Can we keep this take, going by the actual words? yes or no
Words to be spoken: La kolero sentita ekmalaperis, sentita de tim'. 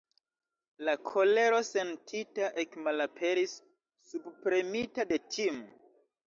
no